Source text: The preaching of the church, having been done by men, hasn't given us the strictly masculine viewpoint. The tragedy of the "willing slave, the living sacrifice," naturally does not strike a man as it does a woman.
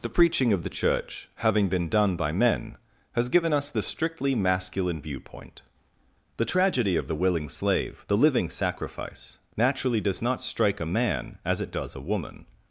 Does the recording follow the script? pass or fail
fail